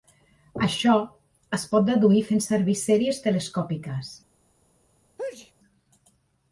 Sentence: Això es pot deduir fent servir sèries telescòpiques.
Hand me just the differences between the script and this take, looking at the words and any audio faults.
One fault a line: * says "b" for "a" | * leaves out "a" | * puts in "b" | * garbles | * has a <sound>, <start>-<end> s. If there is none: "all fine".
* has a sneeze, 5.2-5.5 s